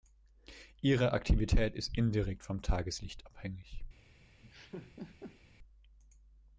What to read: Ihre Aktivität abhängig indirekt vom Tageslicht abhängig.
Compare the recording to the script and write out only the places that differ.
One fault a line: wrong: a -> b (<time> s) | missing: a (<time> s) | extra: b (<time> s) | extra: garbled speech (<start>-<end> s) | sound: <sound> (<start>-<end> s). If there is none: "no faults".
wrong: abhängig -> ist (1.8 s)
sound: laugh (4.4-5.4 s)